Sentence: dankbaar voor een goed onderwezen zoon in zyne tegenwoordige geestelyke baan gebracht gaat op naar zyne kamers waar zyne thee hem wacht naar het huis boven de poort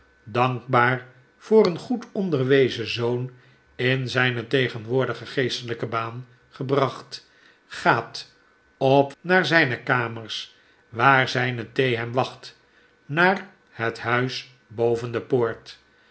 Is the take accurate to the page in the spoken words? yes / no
yes